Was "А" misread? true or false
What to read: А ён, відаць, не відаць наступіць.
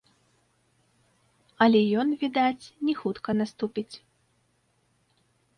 true